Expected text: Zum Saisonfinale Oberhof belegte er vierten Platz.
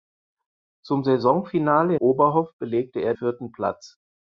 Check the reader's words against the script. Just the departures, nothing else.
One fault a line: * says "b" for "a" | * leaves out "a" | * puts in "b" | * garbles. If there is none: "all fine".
all fine